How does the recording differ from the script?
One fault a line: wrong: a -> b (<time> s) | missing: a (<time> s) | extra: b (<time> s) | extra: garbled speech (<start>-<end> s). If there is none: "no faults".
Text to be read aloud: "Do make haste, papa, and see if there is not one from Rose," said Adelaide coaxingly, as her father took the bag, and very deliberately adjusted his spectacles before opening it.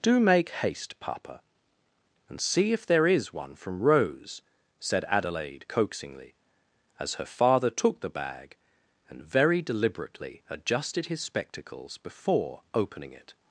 missing: not (3.3 s)